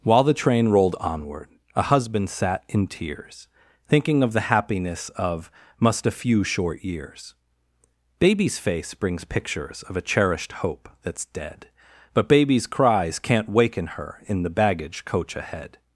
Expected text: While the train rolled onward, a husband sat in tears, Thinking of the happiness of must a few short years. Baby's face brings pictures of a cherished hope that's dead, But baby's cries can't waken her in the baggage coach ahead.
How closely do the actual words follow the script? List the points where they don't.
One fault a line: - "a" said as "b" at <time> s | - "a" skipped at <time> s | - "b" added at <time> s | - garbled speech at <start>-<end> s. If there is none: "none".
none